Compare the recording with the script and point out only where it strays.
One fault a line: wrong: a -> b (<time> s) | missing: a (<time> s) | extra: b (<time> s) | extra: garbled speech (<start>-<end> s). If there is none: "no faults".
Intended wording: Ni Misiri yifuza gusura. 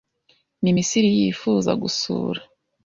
no faults